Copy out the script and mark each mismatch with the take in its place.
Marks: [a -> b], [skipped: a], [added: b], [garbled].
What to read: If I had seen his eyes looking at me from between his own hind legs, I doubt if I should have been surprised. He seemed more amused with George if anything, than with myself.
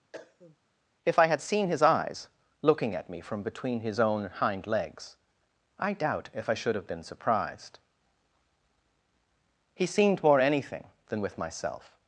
If I had seen his eyes looking at me from between his own hind legs, I doubt if I should have been surprised. He seemed more [skipped: amused with George if] anything, than with myself.